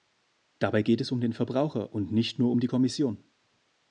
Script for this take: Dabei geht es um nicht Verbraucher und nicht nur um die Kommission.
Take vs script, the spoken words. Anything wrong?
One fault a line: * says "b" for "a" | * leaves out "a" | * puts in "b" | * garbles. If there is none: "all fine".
* says "den" for "nicht"